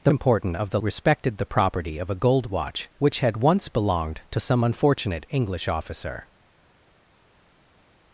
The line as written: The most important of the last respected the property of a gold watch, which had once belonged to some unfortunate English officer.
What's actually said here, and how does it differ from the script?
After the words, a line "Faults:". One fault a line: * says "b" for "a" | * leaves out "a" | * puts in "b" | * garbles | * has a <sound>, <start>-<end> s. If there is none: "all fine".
The important of the respected the property of a gold watch, which had once belonged to some unfortunate English officer.
Faults:
* leaves out "most"
* leaves out "last"